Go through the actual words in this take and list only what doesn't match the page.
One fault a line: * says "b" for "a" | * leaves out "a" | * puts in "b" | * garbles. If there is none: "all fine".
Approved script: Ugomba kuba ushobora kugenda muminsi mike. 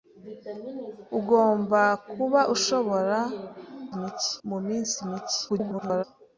* says "mike" for "kugenda"
* garbles